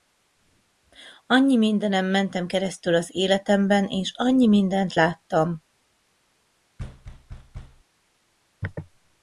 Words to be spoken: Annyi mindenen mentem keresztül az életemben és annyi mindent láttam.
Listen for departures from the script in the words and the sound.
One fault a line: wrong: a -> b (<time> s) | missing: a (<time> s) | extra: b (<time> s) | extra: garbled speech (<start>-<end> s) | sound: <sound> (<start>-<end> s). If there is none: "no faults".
sound: thud (6.8-7.8 s)